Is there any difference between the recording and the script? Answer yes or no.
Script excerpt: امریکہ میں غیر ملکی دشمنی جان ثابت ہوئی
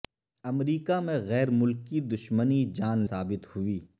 no